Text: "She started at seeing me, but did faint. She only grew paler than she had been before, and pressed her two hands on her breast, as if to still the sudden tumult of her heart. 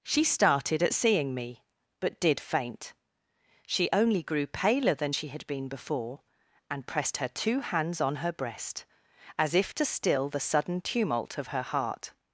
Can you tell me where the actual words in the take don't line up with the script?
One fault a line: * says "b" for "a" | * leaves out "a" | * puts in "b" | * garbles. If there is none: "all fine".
all fine